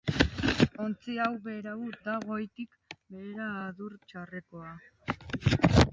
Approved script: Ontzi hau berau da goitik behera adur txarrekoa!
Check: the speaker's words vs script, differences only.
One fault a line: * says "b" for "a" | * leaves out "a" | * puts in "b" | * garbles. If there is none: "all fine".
all fine